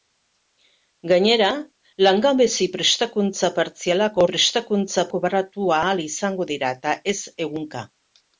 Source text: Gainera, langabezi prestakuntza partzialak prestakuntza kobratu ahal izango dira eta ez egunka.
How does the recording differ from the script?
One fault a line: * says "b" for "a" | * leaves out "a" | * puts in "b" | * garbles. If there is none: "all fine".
all fine